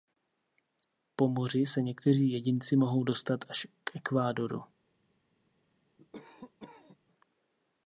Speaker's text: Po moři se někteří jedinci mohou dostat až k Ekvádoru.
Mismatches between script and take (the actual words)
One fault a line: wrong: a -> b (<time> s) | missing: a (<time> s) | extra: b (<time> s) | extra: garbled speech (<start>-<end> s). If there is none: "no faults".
no faults